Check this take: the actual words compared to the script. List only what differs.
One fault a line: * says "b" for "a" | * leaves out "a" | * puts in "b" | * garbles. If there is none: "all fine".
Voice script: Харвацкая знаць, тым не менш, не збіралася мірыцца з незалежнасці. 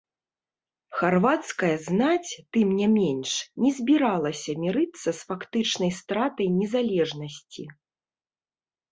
* puts in "фактычнай стратай"